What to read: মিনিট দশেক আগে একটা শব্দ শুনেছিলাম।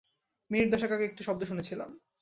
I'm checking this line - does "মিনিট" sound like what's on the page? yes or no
yes